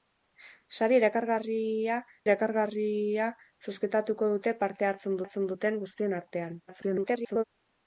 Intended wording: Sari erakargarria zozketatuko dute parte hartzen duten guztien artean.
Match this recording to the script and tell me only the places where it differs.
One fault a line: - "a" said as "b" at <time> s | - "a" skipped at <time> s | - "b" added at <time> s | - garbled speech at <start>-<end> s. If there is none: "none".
- "erakargarria" added at 2.2 s
- "hartzen" added at 5.2 s
- garbled speech at 6.7-7.4 s